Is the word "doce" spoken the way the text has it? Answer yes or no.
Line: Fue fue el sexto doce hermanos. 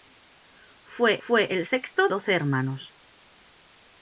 yes